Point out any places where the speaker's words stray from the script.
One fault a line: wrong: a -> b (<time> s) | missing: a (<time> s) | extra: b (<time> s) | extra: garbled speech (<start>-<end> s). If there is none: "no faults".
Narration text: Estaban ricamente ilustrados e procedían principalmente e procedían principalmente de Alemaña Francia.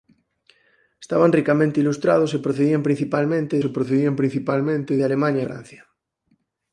no faults